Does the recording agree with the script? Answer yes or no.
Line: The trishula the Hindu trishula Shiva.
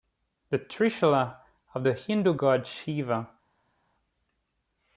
no